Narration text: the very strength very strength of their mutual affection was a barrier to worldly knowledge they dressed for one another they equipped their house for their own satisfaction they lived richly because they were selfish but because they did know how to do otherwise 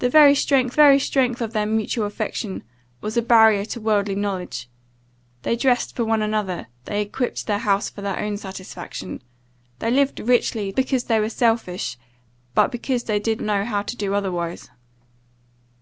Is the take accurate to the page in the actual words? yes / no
yes